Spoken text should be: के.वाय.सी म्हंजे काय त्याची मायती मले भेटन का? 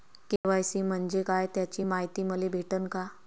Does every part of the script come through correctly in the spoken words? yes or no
yes